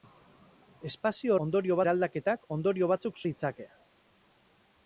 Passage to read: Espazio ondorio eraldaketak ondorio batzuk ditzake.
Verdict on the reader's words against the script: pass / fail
pass